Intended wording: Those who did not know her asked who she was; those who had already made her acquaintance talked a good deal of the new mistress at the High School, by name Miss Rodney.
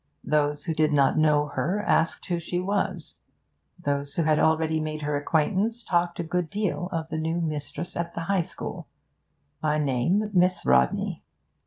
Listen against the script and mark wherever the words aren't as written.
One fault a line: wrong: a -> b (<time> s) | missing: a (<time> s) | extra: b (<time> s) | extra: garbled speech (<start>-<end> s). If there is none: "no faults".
no faults